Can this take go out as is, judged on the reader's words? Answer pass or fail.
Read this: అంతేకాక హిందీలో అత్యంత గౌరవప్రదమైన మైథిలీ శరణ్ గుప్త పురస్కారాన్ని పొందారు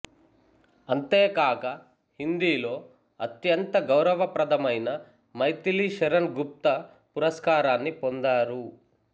pass